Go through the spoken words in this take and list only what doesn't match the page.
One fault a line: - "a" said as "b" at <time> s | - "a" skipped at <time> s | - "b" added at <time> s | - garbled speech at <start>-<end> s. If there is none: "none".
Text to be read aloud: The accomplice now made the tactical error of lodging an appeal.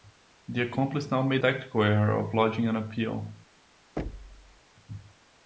- "the" skipped at 1.4 s